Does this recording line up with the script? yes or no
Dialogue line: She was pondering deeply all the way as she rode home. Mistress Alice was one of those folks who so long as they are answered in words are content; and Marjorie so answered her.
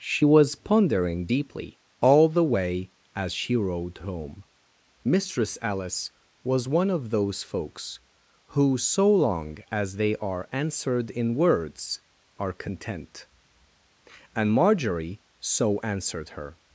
yes